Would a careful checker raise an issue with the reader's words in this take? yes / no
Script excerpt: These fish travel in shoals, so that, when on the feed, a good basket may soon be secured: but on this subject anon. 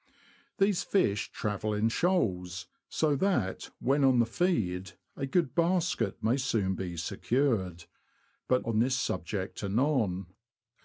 no